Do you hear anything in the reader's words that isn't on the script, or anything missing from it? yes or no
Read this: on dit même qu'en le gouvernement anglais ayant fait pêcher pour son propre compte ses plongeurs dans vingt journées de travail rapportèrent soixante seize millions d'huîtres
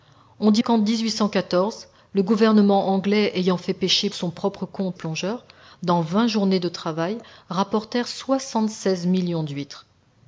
yes